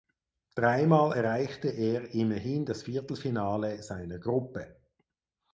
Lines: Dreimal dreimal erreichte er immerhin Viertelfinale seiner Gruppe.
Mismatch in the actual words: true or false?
true